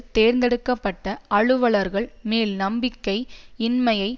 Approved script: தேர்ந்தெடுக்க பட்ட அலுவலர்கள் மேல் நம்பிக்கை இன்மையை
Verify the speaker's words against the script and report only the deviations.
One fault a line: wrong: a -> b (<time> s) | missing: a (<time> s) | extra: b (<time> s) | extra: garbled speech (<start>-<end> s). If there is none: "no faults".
no faults